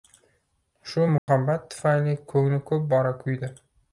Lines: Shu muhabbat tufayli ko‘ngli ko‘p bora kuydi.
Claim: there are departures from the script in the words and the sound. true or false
true